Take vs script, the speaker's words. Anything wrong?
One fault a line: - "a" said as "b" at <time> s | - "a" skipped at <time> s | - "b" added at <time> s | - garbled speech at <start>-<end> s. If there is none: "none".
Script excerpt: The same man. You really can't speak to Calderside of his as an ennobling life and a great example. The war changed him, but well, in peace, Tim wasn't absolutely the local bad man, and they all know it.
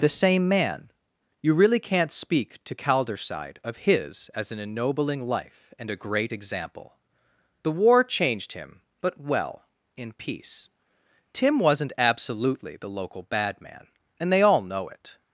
none